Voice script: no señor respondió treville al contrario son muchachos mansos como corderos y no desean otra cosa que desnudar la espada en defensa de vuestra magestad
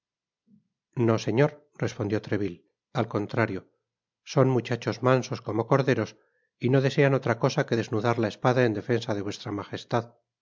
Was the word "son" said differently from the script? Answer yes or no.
no